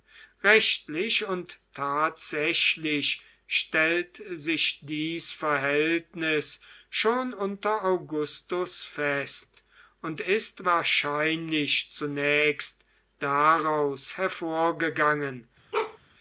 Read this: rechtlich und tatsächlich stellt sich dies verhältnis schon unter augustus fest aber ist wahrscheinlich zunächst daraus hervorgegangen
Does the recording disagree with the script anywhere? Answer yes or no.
yes